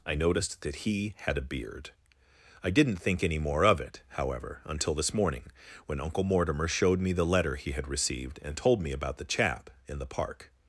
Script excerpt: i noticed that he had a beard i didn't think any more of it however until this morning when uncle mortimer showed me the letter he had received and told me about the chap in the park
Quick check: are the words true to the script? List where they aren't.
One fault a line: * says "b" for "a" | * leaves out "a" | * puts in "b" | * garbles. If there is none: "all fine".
all fine